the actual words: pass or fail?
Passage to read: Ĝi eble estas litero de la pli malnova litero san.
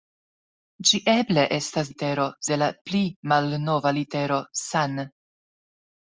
pass